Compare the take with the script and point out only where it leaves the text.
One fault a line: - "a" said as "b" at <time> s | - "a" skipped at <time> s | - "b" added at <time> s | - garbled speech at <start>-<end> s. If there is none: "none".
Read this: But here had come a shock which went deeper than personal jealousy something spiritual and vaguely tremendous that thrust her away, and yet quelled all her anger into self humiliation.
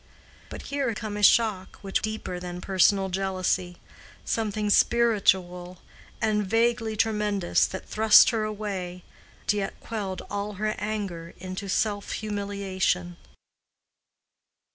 - "had" skipped at 0.9 s
- "went" skipped at 2.0 s
- "and" skipped at 9.0 s